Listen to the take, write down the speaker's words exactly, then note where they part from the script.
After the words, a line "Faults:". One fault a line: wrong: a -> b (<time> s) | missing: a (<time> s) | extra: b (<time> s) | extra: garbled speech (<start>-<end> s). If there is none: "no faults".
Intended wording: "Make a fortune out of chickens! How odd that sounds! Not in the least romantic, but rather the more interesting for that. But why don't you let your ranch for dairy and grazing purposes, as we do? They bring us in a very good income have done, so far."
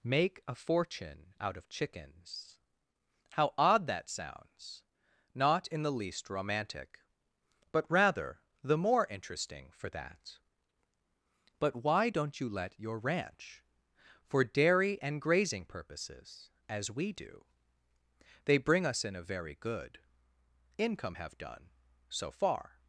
"Make a fortune out of chickens! How odd that sounds! Not in the least romantic, but rather the more interesting for that. But why don't you let your ranch for dairy and grazing purposes, as we do? They bring us in a very good income have done, so far."
Faults:
no faults